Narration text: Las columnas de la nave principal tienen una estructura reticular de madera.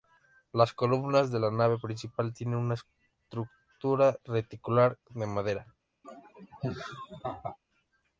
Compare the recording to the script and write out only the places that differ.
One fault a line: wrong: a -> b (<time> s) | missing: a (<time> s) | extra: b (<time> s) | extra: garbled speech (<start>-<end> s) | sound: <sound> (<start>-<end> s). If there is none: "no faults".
sound: laugh (6.0-7.6 s)